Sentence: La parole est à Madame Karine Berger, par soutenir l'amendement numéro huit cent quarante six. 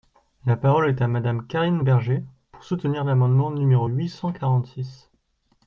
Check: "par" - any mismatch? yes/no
yes